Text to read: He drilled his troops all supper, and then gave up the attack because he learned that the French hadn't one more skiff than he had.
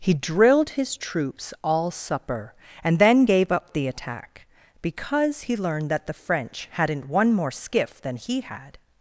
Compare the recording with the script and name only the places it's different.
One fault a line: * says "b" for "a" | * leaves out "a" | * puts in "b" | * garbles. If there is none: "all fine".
all fine